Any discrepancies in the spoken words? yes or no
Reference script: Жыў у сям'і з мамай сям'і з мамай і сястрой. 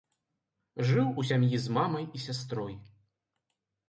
yes